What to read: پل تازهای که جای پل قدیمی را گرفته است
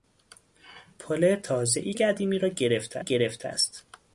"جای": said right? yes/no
no